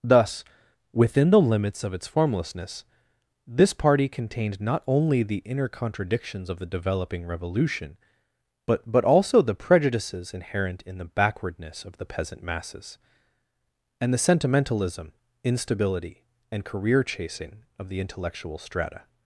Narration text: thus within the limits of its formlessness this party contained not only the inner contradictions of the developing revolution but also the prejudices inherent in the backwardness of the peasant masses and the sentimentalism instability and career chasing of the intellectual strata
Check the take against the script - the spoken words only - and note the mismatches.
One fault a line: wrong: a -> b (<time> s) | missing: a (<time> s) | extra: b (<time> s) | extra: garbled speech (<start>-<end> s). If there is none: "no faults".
extra: but (8.9 s)